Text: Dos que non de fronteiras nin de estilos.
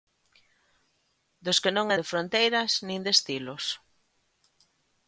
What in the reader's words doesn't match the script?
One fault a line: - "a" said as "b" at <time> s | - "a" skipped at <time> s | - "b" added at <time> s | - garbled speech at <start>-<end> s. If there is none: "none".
none